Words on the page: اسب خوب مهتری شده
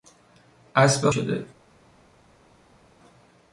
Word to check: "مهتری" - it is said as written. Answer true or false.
false